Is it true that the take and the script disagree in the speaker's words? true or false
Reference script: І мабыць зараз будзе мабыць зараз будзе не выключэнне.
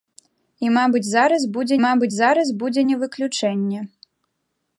false